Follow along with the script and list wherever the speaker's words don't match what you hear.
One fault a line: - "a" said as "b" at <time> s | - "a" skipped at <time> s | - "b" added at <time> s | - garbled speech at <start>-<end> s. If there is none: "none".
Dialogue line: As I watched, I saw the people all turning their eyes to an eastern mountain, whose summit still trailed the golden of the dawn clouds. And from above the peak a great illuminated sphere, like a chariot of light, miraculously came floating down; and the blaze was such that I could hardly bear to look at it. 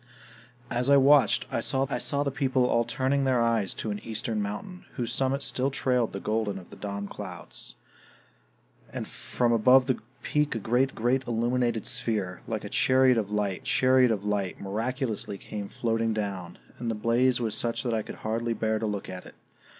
- "I saw" added at 1.9 s
- "great" added at 10.9 s
- "chariot of light" added at 13.6 s